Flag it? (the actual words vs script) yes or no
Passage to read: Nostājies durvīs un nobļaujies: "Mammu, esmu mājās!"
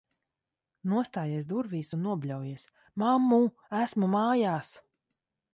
no